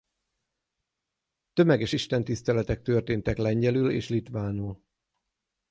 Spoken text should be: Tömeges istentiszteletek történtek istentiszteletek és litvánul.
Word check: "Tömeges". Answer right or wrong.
right